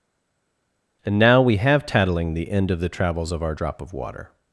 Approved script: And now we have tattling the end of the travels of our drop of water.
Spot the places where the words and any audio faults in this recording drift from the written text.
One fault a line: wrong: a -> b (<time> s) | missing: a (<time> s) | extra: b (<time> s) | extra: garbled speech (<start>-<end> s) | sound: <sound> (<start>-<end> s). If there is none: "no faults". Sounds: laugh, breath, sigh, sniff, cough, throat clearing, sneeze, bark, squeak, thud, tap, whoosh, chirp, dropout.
no faults